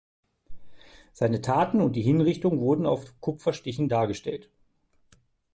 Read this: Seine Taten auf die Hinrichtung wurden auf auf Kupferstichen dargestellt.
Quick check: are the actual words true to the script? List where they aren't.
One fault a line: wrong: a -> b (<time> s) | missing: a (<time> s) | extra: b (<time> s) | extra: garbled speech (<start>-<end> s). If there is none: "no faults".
wrong: auf -> und (1.8 s)
missing: auf (3.2 s)